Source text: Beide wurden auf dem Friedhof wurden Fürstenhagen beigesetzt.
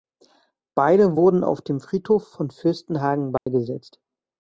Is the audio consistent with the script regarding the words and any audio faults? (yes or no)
no